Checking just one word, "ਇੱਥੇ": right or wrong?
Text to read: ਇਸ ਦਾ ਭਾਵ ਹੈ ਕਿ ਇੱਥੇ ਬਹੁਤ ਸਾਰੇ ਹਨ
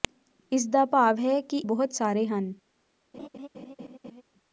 wrong